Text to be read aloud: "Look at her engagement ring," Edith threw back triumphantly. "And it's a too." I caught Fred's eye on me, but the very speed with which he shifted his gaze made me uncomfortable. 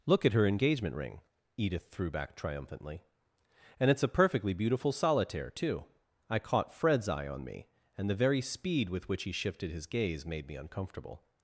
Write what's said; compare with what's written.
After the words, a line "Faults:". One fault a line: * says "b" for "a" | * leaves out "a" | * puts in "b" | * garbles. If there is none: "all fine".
"Look at her engagement ring," Edith threw back triumphantly. "And it's a perfectly beautiful solitaire, too." I caught Fred's eye on me, and the very speed with which he shifted his gaze made me uncomfortable.
Faults:
* puts in "perfectly beautiful solitaire"
* says "and" for "but"